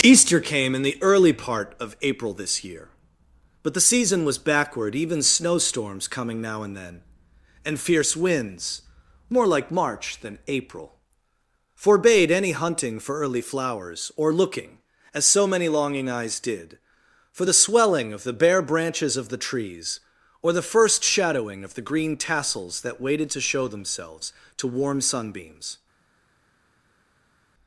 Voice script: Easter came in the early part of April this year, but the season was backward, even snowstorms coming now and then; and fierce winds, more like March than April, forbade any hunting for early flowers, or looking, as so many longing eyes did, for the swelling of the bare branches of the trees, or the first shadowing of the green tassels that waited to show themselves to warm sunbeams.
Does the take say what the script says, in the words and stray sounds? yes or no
yes